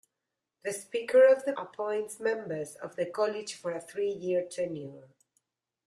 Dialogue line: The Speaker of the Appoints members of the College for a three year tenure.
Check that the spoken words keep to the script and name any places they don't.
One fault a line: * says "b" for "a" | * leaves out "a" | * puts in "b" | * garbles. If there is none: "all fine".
all fine